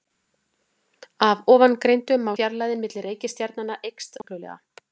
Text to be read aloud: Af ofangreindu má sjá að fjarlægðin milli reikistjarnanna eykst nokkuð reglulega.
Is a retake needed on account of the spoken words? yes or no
yes